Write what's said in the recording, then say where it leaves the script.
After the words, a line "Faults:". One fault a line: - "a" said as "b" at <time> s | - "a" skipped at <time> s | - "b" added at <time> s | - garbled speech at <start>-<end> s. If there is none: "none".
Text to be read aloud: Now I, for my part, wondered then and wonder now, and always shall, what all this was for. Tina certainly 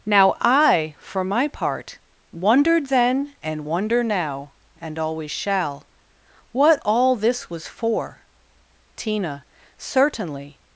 Now I, for my part, wondered then and wonder now, and always shall, what all this was for. Tina certainly
Faults:
none